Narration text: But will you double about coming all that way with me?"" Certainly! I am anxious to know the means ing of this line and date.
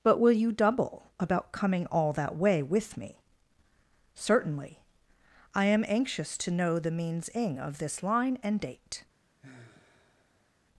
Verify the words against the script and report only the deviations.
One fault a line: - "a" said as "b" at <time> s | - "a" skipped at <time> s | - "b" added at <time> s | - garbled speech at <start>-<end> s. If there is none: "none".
none